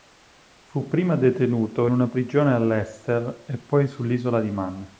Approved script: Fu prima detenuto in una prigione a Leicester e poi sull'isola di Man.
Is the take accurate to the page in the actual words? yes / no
no